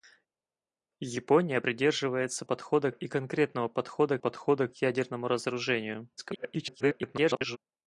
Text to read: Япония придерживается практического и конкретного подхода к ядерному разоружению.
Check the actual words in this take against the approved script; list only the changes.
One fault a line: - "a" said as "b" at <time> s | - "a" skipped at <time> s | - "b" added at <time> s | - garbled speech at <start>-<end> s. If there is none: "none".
- "практического" said as "подхода" at 2.4 s
- "подхода" added at 4.2 s
- garbled speech at 6.2-7.6 s